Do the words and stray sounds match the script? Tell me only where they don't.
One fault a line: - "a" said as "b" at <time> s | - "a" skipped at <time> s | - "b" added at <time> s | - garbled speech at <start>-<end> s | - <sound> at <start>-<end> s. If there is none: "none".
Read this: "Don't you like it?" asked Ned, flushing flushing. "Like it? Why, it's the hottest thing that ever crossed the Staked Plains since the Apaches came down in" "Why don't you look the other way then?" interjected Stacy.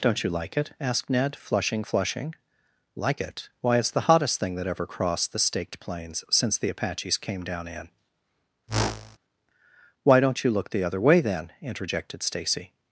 - whoosh at 8.7-9.2 s